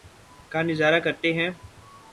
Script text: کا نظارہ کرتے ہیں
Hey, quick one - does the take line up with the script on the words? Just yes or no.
yes